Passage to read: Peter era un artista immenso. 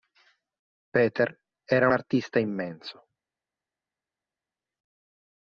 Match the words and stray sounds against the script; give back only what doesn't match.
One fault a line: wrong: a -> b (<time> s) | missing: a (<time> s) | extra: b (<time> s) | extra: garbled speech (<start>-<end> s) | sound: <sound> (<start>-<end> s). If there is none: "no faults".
missing: un (1.9 s)